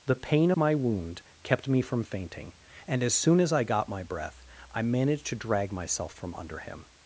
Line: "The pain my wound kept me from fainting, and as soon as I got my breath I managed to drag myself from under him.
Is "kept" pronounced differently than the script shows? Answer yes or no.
no